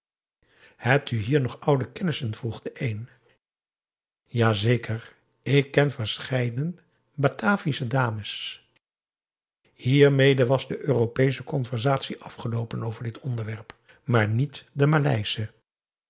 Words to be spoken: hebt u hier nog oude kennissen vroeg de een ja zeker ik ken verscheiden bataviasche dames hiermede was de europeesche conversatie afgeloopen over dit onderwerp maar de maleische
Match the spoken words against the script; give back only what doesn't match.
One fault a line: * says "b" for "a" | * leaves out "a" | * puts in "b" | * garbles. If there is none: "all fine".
* puts in "niet"